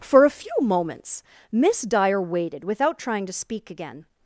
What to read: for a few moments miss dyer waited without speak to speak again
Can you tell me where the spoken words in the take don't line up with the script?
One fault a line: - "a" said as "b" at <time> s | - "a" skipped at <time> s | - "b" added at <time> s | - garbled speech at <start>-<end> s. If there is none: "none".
- "speak" said as "trying" at 3.0 s